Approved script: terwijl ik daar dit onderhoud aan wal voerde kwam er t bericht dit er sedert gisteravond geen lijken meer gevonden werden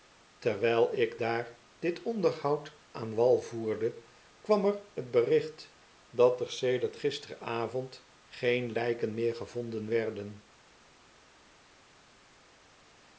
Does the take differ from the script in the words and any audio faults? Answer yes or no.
yes